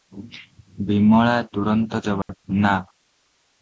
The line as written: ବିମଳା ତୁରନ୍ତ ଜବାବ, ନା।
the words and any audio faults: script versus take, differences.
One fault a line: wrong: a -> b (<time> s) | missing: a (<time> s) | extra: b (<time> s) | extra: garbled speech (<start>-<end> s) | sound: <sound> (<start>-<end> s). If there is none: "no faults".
sound: dropout (2.2-2.3 s)